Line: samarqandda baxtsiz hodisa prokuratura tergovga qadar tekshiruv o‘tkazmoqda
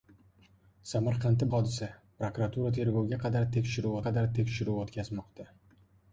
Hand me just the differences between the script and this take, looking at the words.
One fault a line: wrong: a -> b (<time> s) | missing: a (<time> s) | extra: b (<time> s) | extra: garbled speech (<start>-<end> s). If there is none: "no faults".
missing: baxtsiz (1.5 s)
extra: qadar tekshiruv (4.1 s)